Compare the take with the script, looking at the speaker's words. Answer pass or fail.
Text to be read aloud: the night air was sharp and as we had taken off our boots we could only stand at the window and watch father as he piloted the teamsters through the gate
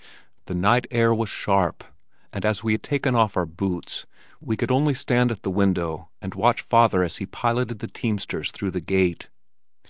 pass